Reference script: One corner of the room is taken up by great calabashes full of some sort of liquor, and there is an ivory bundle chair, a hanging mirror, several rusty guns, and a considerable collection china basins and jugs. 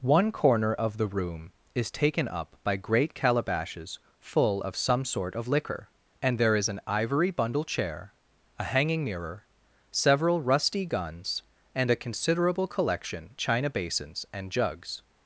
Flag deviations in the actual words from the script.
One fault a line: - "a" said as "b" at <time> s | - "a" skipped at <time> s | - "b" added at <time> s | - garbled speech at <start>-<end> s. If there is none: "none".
none